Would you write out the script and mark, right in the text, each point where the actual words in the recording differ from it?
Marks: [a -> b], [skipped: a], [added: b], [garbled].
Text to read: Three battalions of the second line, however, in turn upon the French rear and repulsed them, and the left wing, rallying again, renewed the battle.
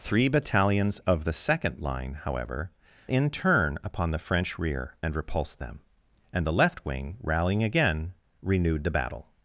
Three battalions of the second line, however, in turn upon the French rear and repulsed them, and the left wing, rallying again, renewed the battle.